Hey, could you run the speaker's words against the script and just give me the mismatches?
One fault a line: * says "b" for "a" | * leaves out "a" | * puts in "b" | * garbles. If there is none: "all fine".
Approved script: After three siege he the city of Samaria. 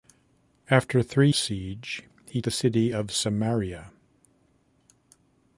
all fine